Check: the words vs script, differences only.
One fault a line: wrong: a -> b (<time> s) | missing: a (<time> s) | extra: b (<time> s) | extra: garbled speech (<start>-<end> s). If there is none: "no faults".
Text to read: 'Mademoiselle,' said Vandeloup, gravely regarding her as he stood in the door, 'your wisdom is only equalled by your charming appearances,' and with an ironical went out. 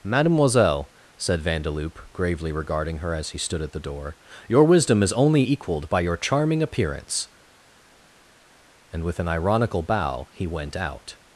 wrong: in -> at (3.6 s)
wrong: appearances -> appearance (6.6 s)
extra: bow he (9.8 s)